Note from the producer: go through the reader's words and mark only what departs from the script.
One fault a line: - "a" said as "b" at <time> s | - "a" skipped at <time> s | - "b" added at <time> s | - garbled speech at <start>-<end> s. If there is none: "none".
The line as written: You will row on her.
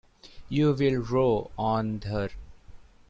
none